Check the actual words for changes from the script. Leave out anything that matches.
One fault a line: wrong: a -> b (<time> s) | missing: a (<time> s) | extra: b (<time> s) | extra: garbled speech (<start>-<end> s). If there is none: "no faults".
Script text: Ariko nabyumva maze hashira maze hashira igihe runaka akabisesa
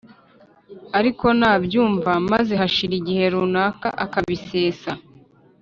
missing: maze hashira (2.9 s)